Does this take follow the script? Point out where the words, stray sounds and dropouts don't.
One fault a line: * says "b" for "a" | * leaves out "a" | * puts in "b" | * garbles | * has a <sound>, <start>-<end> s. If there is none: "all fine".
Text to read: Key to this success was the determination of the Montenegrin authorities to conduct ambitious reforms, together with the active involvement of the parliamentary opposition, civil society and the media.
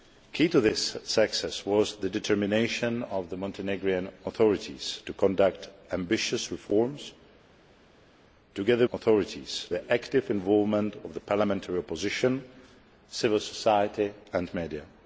* says "authorities" for "with"